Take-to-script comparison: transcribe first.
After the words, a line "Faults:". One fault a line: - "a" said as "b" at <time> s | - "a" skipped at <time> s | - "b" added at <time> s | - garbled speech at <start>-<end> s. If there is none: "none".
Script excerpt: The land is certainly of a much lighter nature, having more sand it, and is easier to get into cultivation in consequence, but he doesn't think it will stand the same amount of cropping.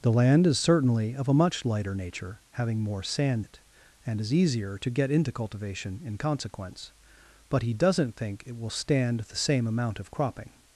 The land is certainly of a much lighter nature, having more sand it, and is easier to get into cultivation in consequence, but he doesn't think it will stand the same amount of cropping.
Faults:
none